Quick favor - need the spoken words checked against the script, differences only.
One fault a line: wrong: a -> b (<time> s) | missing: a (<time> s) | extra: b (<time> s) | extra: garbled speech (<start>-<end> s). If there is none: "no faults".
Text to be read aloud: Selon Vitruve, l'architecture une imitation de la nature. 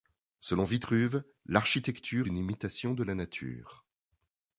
no faults